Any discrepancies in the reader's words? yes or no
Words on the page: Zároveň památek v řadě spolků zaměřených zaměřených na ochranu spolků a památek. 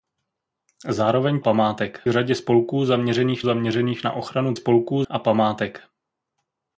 no